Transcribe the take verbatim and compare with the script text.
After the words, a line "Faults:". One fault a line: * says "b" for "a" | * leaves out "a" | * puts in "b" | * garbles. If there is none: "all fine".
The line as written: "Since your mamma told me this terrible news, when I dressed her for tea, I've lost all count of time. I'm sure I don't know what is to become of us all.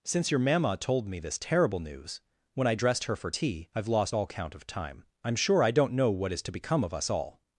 "Since your mamma told me this terrible news, when I dressed her for tea, I've lost all count of time. I'm sure I don't know what is to become of us all.
Faults:
all fine